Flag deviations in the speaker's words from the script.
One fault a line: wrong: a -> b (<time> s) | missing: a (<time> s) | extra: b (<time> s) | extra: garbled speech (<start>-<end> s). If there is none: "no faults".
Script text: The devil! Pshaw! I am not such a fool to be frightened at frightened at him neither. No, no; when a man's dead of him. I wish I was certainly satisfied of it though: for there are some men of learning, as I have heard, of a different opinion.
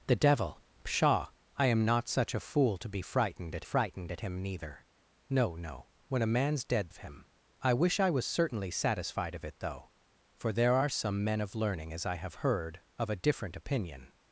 no faults